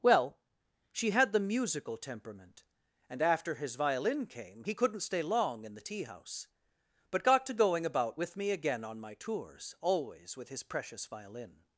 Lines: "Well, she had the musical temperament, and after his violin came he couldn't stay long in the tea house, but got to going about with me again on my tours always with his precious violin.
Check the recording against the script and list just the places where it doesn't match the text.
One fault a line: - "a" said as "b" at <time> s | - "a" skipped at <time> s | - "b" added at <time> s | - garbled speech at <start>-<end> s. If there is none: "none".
none